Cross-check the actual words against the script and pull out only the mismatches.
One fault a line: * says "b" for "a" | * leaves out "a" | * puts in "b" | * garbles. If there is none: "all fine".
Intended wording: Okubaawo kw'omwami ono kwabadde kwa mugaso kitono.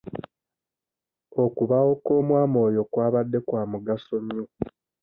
* says "oyo" for "ono"
* says "nnyo" for "kitono"